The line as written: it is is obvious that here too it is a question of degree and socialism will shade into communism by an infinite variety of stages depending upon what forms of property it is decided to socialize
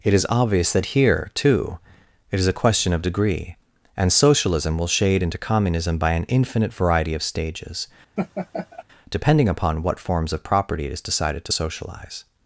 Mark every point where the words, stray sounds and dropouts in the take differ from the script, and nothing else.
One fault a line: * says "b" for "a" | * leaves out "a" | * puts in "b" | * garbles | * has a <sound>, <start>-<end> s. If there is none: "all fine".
* leaves out "is"
* has a laugh, 8.2-8.8 s